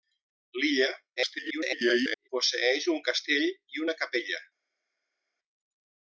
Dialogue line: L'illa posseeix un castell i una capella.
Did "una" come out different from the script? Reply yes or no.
no